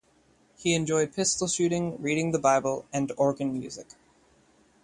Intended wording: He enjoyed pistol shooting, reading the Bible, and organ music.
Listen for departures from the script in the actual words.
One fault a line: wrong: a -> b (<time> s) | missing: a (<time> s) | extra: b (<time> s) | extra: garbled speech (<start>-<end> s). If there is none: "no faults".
no faults